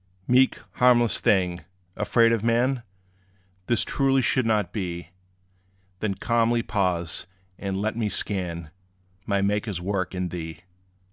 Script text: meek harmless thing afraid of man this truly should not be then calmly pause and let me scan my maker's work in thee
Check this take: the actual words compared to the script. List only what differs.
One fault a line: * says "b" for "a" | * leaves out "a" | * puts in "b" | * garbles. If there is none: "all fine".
all fine